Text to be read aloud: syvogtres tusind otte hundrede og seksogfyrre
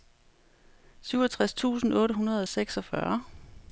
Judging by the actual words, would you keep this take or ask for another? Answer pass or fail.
pass